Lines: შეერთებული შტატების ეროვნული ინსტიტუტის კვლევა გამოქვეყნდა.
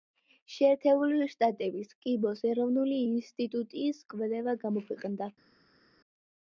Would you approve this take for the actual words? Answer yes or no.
no